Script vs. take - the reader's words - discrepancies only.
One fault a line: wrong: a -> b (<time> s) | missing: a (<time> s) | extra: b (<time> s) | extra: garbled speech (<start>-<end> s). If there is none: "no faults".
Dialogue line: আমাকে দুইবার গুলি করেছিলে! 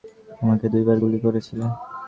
no faults